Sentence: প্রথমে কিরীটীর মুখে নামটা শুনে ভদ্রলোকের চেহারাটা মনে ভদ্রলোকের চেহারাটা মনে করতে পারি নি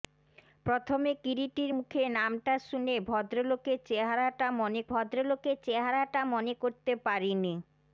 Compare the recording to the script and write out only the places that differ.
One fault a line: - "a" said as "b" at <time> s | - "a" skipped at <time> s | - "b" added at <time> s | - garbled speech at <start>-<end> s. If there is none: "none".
none